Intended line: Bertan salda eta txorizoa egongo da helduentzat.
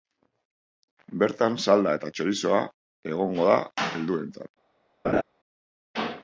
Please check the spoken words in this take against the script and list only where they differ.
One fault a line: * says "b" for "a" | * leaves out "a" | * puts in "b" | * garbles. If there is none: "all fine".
all fine